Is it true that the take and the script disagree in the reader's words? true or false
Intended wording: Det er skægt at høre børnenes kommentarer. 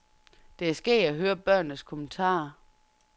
false